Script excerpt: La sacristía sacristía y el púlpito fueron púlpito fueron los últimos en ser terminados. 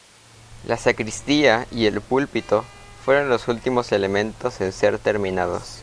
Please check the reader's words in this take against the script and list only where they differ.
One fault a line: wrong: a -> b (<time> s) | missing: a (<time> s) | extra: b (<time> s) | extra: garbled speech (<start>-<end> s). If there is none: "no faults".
missing: sacristía (1.7 s)
missing: púlpito fueron (3.3 s)
extra: elementos (3.9 s)